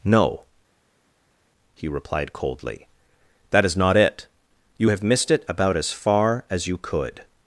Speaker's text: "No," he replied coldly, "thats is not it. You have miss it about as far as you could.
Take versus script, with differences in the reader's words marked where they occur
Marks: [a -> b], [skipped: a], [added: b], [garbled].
"No," he replied coldly, ["thats -> that] is not it. You have [miss -> missed] it about as far as you could.